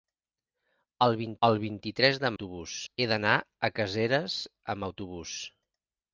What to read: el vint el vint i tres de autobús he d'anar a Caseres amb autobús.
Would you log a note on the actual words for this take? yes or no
no